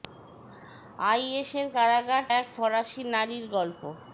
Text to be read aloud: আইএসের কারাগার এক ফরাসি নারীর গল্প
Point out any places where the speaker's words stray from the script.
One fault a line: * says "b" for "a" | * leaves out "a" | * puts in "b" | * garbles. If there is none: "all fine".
all fine